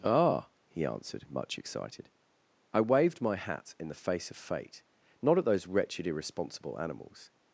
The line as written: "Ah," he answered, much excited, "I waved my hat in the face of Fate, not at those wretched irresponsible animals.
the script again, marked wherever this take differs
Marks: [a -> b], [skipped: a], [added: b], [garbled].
"Ah," he answered, much excited, "I waved my hat in the face of Fate, not at those wretched irresponsible animals.